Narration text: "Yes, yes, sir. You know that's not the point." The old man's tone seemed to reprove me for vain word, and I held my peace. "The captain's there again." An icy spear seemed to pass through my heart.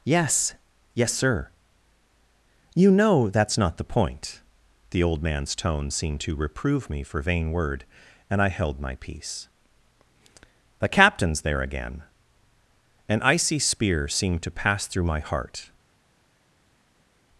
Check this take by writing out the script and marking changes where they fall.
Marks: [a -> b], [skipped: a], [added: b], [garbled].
"Yes, yes, sir. You know that's not the point." The old man's tone seemed to reprove me for vain word, and I held my peace. "The captain's there again." An icy spear seemed to pass through my heart.